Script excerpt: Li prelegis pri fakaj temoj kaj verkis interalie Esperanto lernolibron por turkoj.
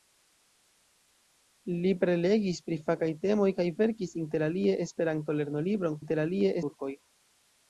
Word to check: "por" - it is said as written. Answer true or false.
false